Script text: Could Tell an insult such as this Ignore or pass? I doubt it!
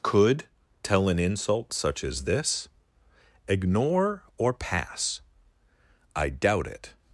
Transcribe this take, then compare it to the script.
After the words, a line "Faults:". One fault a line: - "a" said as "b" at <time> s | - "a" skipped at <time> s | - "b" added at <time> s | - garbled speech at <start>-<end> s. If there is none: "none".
Could Tell an insult such as this Ignore or pass? I doubt it!
Faults:
none